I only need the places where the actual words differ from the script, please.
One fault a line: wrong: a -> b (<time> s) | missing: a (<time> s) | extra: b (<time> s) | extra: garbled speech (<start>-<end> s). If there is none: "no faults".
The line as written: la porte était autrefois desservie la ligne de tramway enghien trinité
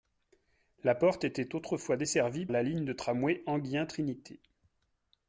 no faults